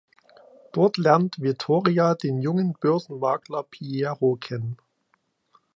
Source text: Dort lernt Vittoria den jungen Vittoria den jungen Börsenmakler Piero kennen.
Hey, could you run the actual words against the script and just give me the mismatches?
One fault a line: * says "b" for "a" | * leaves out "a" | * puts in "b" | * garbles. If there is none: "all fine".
* leaves out "Vittoria den jungen"